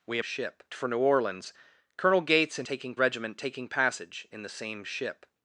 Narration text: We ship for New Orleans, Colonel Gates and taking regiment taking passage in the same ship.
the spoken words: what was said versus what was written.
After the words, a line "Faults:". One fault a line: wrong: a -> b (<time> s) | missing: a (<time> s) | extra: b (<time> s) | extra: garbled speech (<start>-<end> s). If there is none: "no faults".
We ship for New Orleans, Colonel Gates and taking regiment taking passage in the same ship.
Faults:
no faults